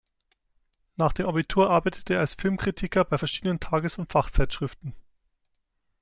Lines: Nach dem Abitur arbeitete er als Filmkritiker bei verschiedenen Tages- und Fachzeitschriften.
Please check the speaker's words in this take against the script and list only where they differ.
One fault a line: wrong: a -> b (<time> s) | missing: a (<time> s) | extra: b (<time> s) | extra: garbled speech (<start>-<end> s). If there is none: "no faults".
no faults